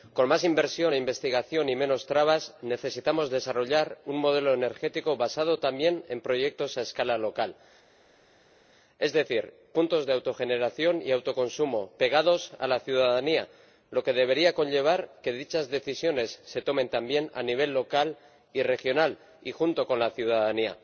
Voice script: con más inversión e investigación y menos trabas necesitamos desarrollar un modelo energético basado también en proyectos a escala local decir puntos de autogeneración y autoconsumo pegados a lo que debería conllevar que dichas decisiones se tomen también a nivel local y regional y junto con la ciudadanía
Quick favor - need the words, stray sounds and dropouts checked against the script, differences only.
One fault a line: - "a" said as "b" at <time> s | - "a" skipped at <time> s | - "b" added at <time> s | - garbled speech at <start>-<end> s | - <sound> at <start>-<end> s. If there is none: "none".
- "es" added at 9.0 s
- "la ciudadanía" added at 12.7 s